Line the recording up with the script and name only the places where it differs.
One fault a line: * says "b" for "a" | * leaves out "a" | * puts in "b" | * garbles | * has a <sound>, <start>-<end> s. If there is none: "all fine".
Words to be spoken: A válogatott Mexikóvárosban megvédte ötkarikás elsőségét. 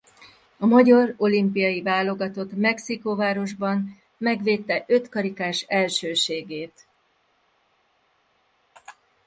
* puts in "magyar olimpiai"